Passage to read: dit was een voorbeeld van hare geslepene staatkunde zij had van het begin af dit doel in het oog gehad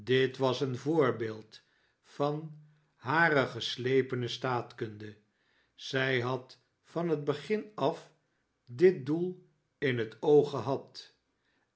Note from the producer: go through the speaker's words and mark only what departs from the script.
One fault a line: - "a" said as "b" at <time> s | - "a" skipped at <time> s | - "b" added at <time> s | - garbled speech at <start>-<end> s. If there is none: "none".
none